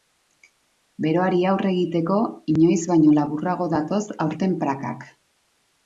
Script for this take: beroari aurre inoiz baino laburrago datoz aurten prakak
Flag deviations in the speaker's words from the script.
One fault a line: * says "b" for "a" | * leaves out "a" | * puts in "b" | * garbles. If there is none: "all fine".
* puts in "egiteko"